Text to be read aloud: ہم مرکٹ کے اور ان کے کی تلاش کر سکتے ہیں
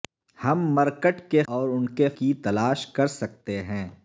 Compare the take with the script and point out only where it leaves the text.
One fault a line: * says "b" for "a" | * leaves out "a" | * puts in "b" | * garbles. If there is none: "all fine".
all fine